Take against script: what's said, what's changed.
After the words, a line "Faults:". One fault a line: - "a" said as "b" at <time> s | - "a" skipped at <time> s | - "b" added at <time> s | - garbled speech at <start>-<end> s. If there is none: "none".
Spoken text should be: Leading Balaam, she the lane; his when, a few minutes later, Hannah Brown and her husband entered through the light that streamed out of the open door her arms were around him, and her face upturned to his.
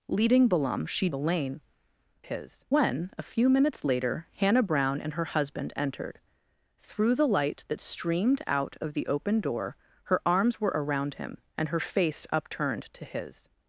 Leading Balaam, she the lane; his when, a few minutes later, Hannah Brown and her husband entered through the light that streamed out of the open door her arms were around him, and her face upturned to his.
Faults:
none